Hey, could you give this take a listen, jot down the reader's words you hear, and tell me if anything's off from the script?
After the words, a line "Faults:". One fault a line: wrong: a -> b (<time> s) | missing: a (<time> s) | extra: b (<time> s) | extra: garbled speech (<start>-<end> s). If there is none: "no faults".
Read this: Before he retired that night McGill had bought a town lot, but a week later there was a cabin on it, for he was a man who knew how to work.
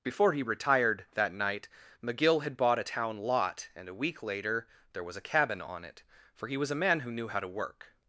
Before he retired that night McGill had bought a town lot, and a week later there was a cabin on it, for he was a man who knew how to work.
Faults:
wrong: but -> and (3.8 s)